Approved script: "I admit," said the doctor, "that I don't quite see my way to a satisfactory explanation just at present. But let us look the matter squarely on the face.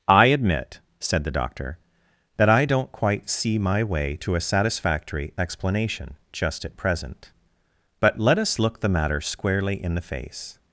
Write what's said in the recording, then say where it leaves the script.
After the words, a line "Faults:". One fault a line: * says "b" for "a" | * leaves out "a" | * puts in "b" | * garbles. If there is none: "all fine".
"I admit," said the doctor, "that I don't quite see my way to a satisfactory explanation just at present. But let us look the matter squarely in the face.
Faults:
* says "in" for "on"